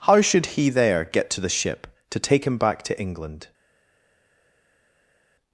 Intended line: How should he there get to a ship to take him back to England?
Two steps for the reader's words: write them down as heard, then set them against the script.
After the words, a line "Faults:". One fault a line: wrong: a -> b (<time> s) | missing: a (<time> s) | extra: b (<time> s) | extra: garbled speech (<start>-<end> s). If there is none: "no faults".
How should he there get to the ship to take him back to England?
Faults:
wrong: a -> the (1.4 s)